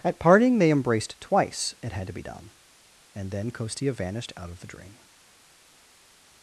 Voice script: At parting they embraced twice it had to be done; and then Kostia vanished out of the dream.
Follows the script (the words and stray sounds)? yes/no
yes